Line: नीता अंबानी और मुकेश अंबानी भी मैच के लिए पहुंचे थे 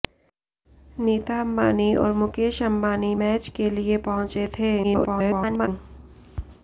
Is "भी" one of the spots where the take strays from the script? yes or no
yes